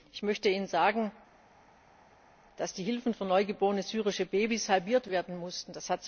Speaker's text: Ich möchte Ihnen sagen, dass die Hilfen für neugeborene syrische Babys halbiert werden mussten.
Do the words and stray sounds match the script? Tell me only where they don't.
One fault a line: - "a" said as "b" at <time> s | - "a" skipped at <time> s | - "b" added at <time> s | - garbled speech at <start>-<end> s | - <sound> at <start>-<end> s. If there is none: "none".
none